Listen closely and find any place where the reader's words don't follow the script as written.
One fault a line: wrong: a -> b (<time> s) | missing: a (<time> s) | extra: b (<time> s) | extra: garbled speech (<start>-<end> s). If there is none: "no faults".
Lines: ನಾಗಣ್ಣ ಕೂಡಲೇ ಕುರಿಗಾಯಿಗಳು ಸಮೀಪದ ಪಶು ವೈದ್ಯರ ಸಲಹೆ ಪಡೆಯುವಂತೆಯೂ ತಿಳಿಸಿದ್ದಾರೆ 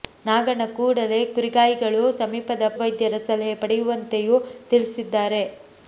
missing: ಪಶು (2.7 s)